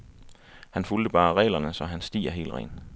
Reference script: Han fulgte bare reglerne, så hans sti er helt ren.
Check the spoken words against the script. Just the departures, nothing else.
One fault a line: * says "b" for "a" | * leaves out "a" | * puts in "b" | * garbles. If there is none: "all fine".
all fine